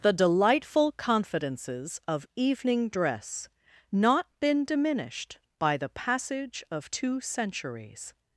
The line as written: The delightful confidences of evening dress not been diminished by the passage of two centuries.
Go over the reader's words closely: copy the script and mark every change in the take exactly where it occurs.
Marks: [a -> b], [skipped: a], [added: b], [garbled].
The delightful confidences of evening dress not been diminished by the passage of two centuries.